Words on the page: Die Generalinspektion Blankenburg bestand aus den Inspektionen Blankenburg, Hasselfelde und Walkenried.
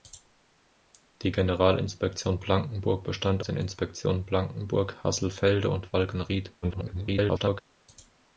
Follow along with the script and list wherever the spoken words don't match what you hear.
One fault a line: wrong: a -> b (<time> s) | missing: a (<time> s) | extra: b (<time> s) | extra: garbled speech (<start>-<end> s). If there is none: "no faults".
missing: aus (3.4 s)
extra: garbled speech (6.6-7.6 s)